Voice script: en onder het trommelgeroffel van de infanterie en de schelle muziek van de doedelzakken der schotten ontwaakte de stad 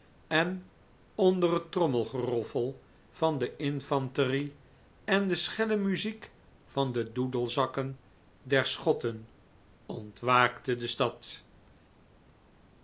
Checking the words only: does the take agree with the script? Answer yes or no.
yes